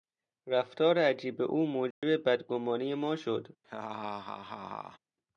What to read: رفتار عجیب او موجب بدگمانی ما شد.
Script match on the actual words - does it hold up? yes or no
yes